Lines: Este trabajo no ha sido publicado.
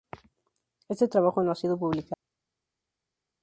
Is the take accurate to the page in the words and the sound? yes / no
yes